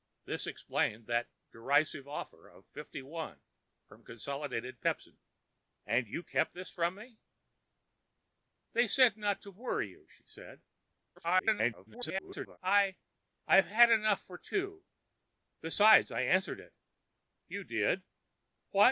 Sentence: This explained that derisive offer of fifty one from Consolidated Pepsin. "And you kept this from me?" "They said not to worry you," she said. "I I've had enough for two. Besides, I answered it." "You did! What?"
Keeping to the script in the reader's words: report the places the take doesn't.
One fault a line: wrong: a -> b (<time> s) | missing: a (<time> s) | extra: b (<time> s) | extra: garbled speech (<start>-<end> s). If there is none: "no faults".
extra: garbled speech (11.2-12.6 s)